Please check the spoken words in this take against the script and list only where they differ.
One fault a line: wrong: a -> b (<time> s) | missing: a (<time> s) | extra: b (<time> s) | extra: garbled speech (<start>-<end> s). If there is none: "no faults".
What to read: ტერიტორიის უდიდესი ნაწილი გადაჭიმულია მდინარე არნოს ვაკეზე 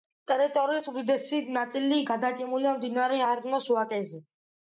no faults